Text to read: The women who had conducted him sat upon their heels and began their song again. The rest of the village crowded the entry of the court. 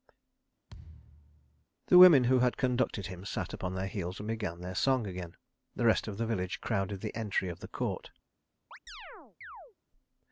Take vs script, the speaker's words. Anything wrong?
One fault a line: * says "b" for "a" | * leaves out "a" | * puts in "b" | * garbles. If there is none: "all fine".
all fine